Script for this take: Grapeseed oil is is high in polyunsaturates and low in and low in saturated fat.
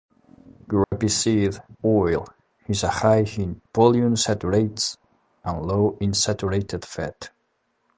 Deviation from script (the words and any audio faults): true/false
true